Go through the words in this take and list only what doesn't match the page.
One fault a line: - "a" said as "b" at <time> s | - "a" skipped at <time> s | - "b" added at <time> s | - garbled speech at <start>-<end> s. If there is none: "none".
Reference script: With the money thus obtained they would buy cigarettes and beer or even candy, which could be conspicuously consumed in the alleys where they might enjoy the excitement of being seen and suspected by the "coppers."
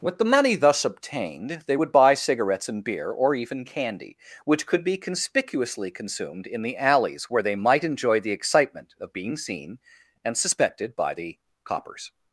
none